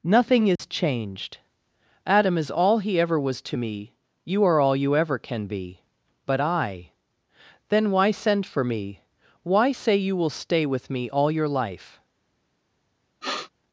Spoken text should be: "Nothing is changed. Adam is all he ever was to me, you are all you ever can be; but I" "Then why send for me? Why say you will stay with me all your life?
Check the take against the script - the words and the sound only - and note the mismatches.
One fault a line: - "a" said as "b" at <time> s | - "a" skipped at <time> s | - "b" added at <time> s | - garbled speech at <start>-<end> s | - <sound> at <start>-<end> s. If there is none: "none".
- dropout at 0.6-0.6 s
- sniff at 13.2-13.5 s